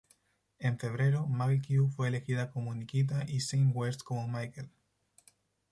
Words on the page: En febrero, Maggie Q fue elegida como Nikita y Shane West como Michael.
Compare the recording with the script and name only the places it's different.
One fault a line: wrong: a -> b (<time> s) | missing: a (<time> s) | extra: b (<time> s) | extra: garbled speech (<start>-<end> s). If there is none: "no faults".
no faults